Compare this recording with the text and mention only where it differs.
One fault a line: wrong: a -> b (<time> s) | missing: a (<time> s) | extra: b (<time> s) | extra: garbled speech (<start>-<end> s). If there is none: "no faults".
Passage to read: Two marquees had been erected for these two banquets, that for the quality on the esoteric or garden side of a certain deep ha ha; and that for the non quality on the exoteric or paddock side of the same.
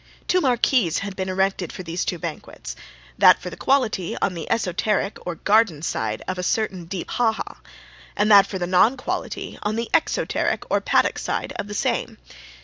no faults